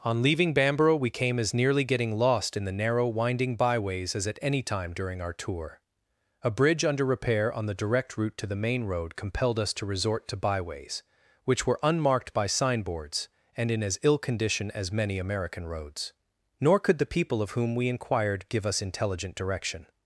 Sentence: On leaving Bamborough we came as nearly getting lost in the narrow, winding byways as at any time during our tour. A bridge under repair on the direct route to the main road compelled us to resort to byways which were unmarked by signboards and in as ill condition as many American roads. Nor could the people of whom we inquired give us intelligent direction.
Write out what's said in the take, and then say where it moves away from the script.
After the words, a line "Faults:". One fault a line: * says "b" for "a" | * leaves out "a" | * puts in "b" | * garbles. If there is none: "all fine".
On leaving Bamborough we came as nearly getting lost in the narrow, winding byways as at any time during our tour. A bridge under repair on the direct route to the main road compelled us to resort to byways which were unmarked by signboards and in as ill condition as many American roads. Nor could the people of whom we inquired give us intelligent direction.
Faults:
all fine